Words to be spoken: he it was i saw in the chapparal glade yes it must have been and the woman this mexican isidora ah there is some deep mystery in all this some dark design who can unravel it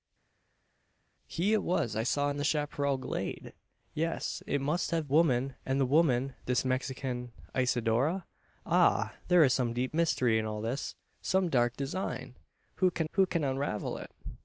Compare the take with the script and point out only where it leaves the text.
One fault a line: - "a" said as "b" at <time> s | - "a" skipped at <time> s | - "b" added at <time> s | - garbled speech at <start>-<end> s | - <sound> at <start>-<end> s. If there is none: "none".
- "been" said as "woman" at 5.1 s
- "who can" added at 13.1 s